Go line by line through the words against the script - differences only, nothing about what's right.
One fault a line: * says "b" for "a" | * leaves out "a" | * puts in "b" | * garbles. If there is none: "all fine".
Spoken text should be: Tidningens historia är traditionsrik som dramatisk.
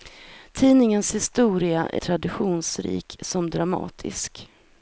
all fine